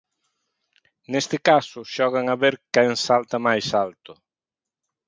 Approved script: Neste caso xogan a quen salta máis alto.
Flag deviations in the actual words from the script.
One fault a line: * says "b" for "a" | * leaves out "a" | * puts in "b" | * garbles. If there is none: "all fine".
* puts in "ver"